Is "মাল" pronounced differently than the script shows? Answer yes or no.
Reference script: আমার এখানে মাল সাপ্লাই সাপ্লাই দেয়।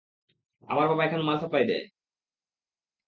no